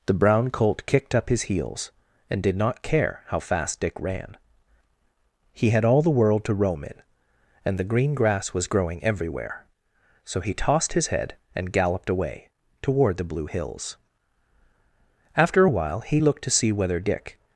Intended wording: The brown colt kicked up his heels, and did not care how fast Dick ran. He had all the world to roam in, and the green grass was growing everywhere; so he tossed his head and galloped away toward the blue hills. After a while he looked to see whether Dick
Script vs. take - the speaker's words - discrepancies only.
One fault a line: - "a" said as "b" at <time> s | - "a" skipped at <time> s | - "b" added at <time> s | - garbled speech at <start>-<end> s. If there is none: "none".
none